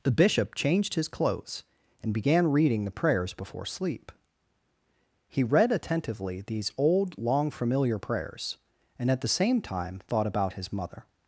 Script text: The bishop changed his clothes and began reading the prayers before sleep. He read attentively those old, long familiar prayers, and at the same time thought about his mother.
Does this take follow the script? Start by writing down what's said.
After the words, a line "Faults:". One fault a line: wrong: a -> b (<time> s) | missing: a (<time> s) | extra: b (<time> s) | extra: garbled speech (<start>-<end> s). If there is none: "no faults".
The bishop changed his clothes and began reading the prayers before sleep. He read attentively these old, long familiar prayers, and at the same time thought about his mother.
Faults:
wrong: those -> these (6.4 s)